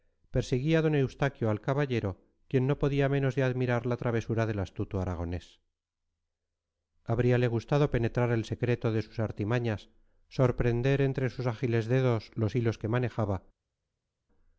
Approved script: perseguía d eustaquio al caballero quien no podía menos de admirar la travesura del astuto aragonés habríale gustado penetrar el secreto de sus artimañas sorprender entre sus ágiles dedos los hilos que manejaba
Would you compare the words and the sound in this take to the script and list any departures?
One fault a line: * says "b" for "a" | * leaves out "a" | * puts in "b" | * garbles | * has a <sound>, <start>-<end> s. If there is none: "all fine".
all fine